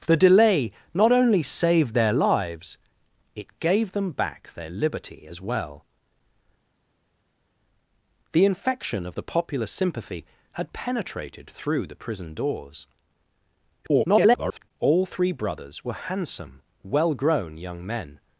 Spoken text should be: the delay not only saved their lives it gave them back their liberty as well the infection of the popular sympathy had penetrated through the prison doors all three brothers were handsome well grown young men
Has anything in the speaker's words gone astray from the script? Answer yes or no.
yes